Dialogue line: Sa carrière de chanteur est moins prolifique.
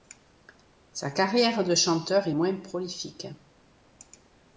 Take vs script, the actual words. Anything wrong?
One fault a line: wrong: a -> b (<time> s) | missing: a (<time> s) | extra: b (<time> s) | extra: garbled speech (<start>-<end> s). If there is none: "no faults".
no faults